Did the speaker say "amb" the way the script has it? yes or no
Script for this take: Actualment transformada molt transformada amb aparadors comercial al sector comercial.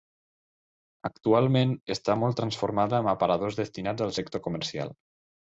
yes